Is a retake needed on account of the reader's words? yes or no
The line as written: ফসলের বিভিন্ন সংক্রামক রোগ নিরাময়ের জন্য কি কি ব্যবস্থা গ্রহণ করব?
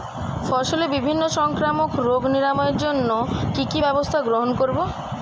no